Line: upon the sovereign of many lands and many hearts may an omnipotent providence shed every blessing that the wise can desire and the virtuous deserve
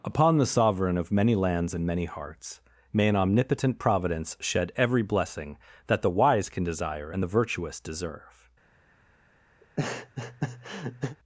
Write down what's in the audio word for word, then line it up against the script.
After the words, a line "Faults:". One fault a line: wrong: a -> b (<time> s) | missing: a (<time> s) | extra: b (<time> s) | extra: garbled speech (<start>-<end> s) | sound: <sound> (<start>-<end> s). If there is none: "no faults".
upon the sovereign of many lands and many hearts may an omnipotent providence shed every blessing that the wise can desire and the virtuous deserve
Faults:
sound: laugh (9.6-11.2 s)